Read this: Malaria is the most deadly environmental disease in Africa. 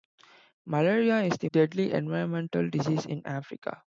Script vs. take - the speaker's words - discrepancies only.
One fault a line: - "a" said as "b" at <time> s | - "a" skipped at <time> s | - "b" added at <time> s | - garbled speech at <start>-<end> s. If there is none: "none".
- "most" skipped at 1.5 s